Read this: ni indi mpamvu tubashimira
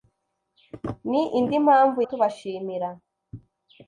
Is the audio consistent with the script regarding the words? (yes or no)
yes